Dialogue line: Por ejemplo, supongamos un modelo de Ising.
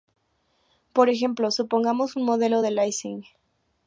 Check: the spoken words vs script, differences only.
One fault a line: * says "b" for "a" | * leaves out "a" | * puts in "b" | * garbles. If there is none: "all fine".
all fine